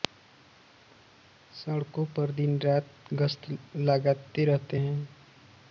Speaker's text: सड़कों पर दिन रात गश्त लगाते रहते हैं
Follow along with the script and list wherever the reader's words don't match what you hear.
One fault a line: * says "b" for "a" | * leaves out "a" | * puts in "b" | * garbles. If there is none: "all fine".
all fine